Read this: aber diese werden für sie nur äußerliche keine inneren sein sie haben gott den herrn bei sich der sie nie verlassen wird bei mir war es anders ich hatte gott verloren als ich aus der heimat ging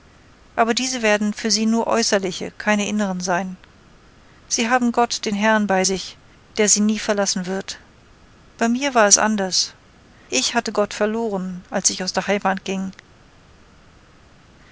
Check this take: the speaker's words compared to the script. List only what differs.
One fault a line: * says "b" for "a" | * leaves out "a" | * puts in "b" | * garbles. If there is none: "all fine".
all fine